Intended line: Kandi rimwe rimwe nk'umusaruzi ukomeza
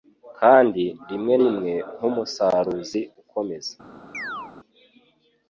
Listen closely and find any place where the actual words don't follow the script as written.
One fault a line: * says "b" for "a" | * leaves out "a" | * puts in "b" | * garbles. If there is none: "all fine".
all fine